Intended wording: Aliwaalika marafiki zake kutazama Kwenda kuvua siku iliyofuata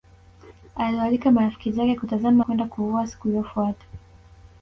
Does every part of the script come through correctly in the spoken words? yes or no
yes